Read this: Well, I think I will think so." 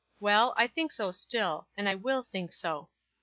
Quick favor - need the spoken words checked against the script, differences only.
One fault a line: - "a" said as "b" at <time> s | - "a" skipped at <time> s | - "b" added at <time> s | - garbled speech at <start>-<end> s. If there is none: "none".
- "so still and" added at 0.9 s